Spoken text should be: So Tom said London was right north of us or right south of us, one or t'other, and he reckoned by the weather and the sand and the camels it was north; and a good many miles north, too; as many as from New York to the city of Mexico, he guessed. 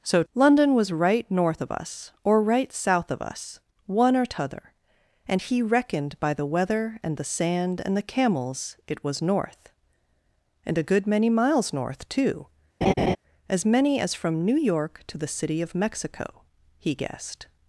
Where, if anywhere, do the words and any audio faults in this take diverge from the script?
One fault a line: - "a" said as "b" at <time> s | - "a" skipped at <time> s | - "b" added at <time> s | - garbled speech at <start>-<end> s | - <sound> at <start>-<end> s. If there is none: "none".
- "Tom said" skipped at 0.2 s
- laugh at 12.8-13.2 s